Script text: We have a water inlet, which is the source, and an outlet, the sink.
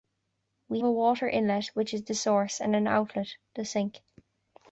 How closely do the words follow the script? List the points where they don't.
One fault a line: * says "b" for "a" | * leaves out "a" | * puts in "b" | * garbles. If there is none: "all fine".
* leaves out "have"